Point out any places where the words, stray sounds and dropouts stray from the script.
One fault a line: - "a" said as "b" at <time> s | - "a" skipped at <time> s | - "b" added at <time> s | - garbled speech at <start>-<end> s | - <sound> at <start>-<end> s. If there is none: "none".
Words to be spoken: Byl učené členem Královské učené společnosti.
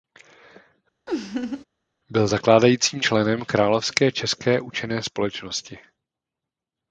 - laugh at 1.1-1.6 s
- "učené" said as "zakládajícím" at 2.3 s
- "české" added at 4.1 s